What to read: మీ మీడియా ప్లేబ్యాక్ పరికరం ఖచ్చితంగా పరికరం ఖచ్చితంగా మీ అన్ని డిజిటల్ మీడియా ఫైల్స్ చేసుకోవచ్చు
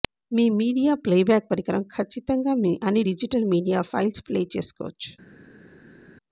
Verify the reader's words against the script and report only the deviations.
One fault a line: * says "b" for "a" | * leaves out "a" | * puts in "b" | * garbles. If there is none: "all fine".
* leaves out "పరికరం ఖచ్చితంగా"
* puts in "ప్లే"